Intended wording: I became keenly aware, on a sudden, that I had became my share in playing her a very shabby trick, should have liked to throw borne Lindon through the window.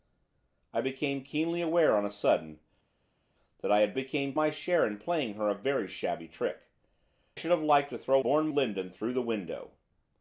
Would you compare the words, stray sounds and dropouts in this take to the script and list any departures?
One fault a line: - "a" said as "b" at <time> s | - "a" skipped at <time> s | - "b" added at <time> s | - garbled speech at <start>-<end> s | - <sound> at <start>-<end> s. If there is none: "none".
none